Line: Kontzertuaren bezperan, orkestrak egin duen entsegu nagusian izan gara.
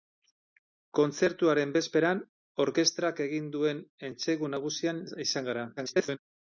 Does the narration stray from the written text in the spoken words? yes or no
yes